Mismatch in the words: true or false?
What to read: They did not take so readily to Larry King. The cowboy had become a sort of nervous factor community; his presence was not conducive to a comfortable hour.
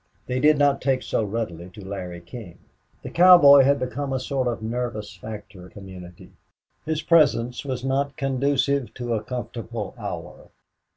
false